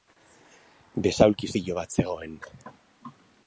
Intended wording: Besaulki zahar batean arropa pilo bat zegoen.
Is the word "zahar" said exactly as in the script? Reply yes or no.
no